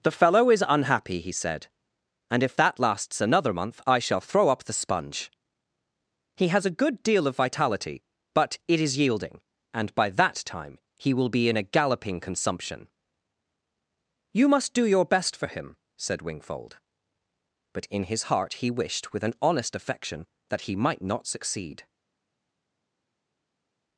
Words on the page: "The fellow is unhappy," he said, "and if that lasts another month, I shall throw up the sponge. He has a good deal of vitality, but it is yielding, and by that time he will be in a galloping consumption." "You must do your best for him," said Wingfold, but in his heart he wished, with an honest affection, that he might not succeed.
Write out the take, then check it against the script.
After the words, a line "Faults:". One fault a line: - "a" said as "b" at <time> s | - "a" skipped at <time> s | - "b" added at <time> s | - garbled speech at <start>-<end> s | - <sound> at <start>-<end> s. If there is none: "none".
"The fellow is unhappy," he said, "and if that lasts another month, I shall throw up the sponge. He has a good deal of vitality, but it is yielding, and by that time he will be in a galloping consumption." "You must do your best for him," said Wingfold, but in his heart he wished, with an honest affection, that he might not succeed.
Faults:
none